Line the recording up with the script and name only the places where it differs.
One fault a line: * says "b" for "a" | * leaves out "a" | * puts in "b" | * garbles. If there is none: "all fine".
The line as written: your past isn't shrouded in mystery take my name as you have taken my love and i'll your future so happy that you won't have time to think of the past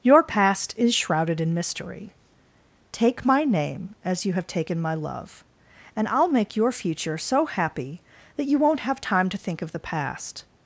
* says "is" for "isn't"
* puts in "make"